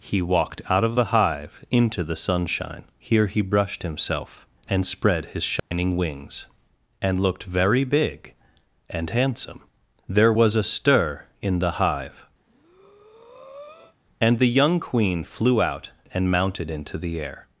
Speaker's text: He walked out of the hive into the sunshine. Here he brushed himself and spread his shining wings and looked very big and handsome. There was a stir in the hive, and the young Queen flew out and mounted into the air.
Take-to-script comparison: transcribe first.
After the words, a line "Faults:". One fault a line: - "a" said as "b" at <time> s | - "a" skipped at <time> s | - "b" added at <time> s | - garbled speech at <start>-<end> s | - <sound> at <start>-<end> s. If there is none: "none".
He walked out of the hive into the sunshine. Here he brushed himself and spread his shining wings and looked very big and handsome. There was a stir in the hive, and the young Queen flew out and mounted into the air.
Faults:
- dropout at 5.6-5.7 s
- breath at 12.4-14.0 s